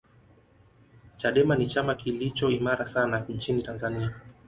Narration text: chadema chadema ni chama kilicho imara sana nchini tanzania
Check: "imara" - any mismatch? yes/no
no